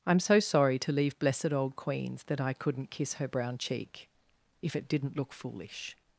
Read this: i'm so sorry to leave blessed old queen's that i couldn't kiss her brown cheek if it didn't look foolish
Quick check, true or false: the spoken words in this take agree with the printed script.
true